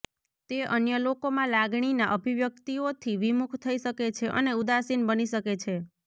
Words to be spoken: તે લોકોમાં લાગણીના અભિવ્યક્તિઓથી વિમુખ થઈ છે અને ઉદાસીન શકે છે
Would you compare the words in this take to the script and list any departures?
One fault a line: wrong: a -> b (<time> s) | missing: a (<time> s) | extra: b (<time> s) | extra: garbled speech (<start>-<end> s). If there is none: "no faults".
extra: અન્ય (0.7 s)
extra: શકે (3.8 s)
extra: બની (5.1 s)